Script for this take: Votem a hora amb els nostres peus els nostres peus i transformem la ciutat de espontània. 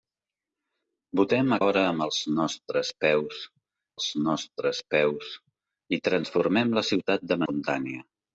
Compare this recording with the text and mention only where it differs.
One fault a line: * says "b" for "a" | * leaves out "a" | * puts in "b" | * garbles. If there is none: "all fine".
all fine